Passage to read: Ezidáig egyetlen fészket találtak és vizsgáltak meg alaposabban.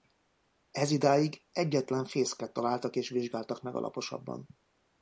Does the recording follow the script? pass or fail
pass